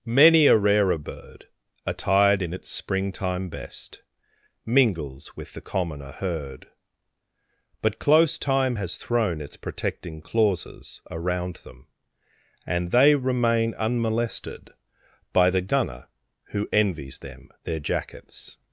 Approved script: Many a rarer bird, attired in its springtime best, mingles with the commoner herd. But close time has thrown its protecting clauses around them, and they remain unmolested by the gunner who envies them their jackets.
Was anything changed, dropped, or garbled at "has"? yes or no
no